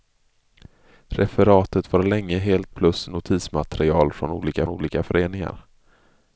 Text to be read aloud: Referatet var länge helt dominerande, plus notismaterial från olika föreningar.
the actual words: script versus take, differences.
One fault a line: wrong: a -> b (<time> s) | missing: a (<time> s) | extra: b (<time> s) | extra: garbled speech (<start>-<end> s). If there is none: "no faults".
missing: dominerande (2.7 s)
extra: olika (4.7 s)